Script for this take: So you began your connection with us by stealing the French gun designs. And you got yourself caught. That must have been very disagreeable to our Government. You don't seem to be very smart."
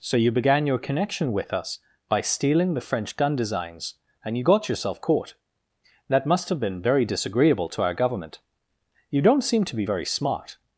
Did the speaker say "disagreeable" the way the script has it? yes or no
yes